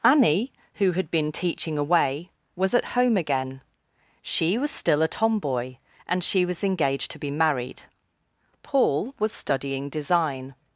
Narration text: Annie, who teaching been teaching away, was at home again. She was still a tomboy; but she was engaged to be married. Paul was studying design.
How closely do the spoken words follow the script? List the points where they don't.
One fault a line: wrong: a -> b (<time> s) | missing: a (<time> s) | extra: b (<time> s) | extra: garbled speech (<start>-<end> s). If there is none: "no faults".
wrong: teaching -> had (0.9 s)
wrong: but -> and (6.1 s)